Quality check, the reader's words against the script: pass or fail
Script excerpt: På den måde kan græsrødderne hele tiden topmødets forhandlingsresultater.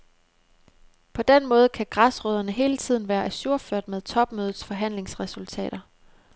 fail